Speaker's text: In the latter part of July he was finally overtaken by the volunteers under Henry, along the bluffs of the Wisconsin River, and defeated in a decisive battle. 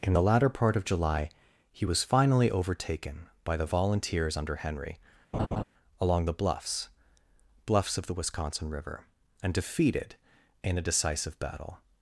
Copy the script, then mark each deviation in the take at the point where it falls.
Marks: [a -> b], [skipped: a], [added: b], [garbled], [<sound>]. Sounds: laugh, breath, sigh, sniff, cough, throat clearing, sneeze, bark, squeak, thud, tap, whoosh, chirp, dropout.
In the latter part of July he was finally overtaken by the volunteers under Henry, [laugh] along the bluffs [added: bluffs] of the Wisconsin River, and defeated in a decisive battle.